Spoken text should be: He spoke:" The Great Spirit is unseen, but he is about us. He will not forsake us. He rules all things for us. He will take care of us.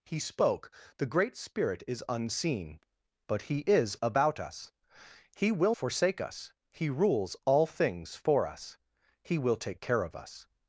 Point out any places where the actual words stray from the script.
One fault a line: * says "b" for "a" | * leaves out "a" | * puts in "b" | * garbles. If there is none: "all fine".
* leaves out "not"